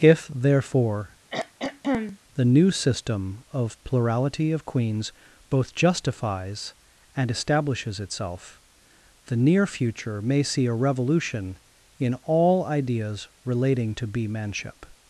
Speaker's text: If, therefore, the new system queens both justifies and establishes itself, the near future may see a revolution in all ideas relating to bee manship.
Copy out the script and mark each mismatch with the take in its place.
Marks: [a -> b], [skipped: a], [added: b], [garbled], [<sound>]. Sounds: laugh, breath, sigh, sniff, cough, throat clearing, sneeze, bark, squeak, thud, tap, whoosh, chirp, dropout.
If, therefore, [throat clearing] the new system [added: of plurality of] queens both justifies and establishes itself, the near future may see a revolution in all ideas relating to bee manship.